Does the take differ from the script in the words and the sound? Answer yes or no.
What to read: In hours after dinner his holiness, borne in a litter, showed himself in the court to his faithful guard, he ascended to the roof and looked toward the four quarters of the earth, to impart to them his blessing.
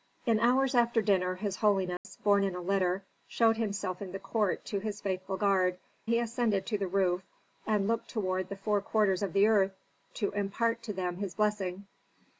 yes